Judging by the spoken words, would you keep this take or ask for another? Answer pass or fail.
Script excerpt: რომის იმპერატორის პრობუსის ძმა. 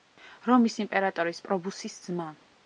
pass